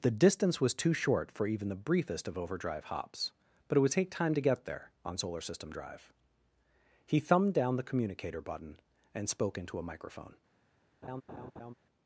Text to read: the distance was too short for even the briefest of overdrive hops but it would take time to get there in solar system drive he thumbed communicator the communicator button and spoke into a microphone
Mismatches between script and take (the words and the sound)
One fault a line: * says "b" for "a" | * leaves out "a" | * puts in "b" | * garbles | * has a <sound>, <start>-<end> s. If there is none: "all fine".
* says "on" for "in"
* says "down" for "communicator"
* has a laugh, 11.0-11.7 s